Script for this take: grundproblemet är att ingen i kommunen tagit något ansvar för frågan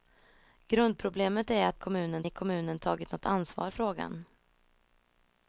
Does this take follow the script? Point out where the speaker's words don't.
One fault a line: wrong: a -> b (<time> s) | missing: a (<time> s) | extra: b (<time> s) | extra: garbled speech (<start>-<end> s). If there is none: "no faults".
wrong: ingen -> kommunen (1.8 s)
missing: för (3.7 s)